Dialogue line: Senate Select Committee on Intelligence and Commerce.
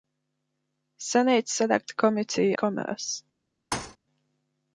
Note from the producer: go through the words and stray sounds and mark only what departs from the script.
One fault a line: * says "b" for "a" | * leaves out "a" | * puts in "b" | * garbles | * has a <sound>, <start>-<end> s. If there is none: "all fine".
* leaves out "on Intelligence and"
* has a thud, 3.7-4.0 s